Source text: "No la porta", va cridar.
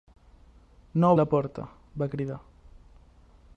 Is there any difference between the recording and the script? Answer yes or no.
no